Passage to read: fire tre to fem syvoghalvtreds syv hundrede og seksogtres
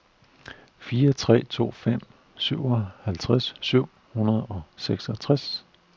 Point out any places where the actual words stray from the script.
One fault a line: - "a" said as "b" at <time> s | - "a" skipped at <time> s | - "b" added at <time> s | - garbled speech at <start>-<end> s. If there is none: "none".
none